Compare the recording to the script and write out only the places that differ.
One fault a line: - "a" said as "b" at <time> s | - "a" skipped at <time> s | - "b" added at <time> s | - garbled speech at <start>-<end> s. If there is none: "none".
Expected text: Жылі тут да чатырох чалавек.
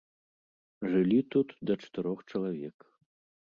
none